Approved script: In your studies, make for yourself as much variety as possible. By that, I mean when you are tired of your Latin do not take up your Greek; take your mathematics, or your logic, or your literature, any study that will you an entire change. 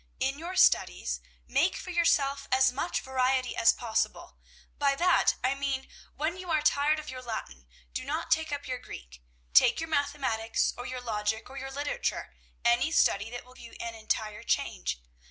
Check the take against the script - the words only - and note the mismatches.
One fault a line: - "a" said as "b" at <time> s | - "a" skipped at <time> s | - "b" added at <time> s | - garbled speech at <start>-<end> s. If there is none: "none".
none